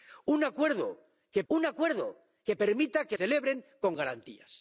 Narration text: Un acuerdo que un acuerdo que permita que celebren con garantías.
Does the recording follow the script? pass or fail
pass